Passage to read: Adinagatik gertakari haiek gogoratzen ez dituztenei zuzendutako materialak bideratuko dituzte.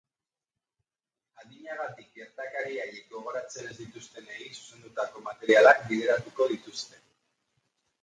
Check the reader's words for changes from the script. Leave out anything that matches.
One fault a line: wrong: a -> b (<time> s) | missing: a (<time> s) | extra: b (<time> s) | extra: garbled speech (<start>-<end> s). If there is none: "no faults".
no faults